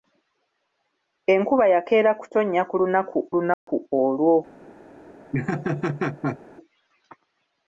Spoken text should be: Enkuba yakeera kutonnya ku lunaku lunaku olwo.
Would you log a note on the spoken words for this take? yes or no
no